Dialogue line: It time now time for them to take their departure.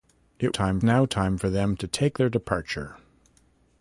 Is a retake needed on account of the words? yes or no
no